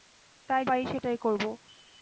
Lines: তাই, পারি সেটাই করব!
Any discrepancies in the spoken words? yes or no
no